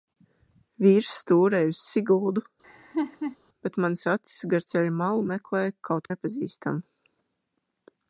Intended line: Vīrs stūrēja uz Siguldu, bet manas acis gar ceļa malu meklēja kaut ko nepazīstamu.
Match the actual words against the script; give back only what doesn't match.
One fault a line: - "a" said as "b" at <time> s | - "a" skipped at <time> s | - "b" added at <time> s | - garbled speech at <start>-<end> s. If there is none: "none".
- "ko" skipped at 6.1 s